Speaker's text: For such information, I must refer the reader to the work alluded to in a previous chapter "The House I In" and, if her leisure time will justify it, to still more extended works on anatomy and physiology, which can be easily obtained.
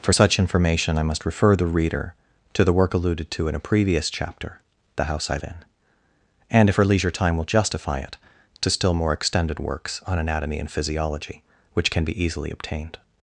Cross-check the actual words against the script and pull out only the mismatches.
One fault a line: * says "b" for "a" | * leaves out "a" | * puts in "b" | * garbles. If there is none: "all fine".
all fine